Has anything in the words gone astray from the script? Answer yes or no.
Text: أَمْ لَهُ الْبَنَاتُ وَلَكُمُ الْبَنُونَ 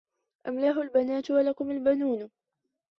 no